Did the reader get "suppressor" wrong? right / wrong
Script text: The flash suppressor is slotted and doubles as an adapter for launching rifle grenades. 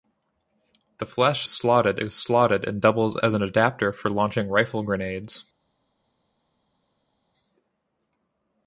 wrong